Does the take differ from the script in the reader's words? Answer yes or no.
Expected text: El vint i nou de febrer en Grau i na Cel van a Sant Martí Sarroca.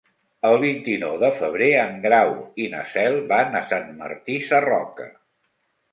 no